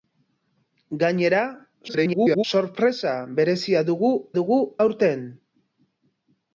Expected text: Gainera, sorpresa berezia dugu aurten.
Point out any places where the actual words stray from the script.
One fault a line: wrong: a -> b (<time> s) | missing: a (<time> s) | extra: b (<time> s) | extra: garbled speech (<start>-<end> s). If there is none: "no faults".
extra: garbled speech (1.9-2.4 s)
extra: dugu (4.4 s)